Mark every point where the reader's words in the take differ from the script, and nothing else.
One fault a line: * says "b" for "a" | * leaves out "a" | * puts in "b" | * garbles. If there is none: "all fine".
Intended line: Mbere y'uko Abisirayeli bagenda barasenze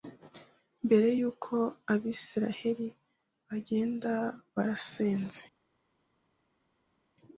all fine